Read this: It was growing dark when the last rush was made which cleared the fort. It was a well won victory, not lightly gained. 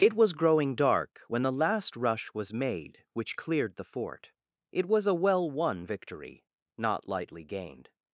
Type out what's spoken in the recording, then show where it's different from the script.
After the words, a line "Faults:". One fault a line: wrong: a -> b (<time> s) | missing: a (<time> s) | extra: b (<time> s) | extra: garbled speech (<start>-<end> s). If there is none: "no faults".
It was growing dark when the last rush was made which cleared the fort. It was a well won victory, not lightly gained.
Faults:
no faults